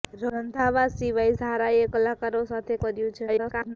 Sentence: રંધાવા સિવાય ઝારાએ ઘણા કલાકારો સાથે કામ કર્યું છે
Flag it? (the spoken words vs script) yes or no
yes